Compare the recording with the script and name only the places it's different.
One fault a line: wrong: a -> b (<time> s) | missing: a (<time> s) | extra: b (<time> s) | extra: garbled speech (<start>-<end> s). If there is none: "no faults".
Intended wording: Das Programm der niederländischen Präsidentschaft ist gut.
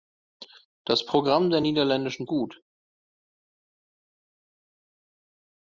missing: Präsidentschaft ist (2.3 s)